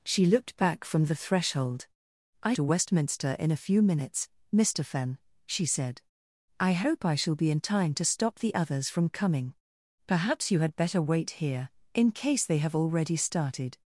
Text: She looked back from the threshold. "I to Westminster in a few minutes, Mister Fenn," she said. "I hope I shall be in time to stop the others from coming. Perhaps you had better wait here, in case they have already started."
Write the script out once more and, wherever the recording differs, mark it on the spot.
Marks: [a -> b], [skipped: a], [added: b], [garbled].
She looked back from the threshold. "I to Westminster in a few minutes, Mister Fenn," she said. "I hope I shall be in time to stop the others from coming. Perhaps you had better wait here, in case they have already started."